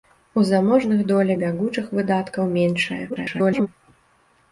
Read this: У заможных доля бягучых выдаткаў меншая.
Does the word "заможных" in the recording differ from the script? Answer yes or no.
no